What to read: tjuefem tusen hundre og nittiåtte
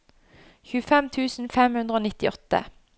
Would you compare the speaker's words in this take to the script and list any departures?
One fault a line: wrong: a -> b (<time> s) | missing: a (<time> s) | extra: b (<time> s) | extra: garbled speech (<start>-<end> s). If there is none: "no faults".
extra: fem (1.6 s)